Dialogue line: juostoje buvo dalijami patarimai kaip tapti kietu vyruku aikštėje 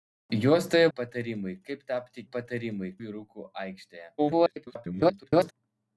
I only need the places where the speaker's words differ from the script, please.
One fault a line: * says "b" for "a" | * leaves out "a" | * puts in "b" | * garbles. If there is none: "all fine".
* leaves out "buvo dalijami"
* says "patarimai" for "kietu"
* garbles